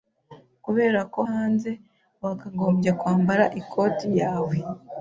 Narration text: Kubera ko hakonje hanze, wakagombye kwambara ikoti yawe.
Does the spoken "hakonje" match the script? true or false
false